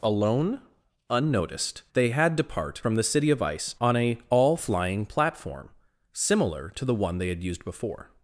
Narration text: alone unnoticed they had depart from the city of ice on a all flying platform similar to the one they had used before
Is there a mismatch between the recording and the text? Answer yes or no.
no